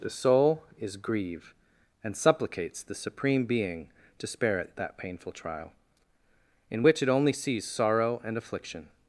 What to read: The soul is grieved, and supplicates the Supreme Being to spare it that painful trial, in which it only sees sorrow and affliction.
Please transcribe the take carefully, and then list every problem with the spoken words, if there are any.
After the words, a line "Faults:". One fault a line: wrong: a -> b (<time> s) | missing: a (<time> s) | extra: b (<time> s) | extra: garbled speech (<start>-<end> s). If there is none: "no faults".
The soul is grieve, and supplicates the Supreme Being to spare it that painful trial, in which it only sees sorrow and affliction.
Faults:
wrong: grieved -> grieve (1.0 s)